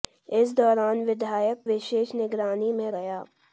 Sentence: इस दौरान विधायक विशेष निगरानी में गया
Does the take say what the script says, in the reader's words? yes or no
yes